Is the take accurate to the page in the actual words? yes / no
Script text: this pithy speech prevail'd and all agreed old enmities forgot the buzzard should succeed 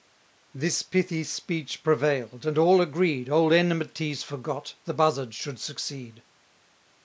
yes